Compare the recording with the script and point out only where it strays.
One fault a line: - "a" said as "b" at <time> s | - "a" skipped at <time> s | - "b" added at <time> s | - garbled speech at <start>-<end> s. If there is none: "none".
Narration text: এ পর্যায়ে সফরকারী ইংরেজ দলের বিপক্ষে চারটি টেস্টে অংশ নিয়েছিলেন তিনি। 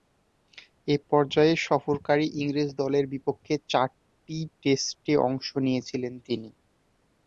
none